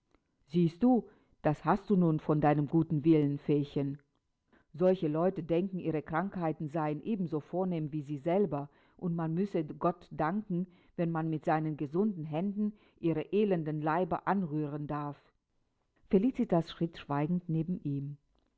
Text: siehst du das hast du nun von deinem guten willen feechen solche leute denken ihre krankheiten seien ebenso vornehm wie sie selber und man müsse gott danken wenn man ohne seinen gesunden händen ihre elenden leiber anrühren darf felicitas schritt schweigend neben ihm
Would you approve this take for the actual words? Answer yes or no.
no